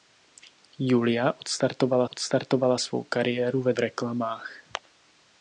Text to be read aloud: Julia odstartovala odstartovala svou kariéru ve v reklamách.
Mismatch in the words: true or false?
false